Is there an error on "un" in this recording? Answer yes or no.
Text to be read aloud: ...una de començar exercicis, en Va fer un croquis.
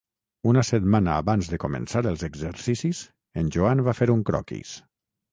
no